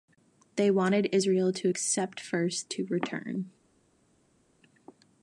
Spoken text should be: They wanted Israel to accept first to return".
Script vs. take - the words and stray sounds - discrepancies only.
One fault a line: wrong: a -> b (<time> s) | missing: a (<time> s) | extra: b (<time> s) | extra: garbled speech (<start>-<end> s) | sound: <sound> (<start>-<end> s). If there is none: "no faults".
no faults